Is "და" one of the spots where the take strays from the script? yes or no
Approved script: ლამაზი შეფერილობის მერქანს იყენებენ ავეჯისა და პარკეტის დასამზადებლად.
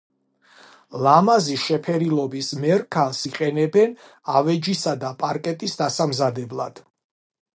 no